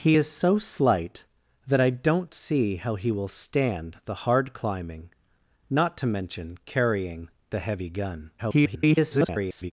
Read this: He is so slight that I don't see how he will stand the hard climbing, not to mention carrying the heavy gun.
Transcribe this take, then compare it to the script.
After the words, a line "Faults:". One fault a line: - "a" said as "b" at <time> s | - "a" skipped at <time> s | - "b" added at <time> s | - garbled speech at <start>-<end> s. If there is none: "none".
He is so slight that I don't see how he will stand the hard climbing, not to mention carrying the heavy gun. [garbled]
Faults:
- garbled speech at 8.4-9.7 s